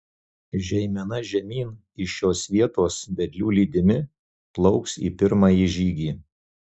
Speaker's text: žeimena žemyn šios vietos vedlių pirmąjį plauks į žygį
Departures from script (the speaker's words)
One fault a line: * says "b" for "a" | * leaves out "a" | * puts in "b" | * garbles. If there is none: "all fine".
* puts in "iš"
* says "lydimi" for "pirmąjį"
* puts in "pirmąjį"